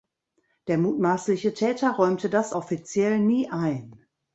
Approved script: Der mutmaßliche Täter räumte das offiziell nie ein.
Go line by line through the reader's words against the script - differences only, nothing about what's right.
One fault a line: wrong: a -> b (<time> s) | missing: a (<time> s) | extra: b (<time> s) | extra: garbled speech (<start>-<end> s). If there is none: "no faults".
no faults